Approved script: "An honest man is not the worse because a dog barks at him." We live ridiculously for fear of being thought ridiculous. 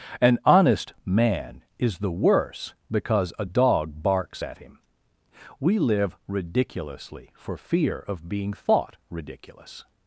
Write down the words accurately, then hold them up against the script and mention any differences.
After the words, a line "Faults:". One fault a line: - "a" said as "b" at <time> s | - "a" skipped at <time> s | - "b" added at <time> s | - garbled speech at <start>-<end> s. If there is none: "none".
"An honest man is the worse because a dog barks at him." We live ridiculously for fear of being thought ridiculous.
Faults:
- "not" skipped at 2.0 s